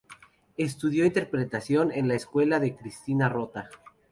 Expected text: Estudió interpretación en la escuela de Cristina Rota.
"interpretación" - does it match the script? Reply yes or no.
yes